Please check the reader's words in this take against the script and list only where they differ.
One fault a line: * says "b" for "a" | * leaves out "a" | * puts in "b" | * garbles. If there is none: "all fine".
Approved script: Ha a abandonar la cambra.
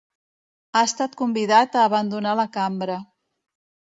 * puts in "estat convidat"